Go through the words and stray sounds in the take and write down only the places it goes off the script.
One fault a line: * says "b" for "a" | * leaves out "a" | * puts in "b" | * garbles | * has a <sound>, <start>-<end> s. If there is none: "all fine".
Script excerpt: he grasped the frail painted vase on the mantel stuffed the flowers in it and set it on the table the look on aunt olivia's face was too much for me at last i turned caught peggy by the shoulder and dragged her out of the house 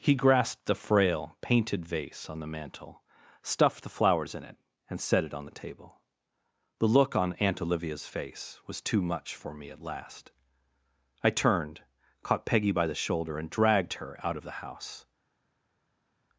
all fine